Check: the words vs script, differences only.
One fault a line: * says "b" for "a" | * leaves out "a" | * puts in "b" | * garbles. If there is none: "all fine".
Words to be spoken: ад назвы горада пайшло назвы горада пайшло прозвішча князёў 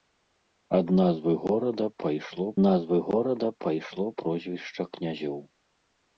all fine